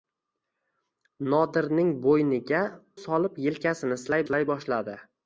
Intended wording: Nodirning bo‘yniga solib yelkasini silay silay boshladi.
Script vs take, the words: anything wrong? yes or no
no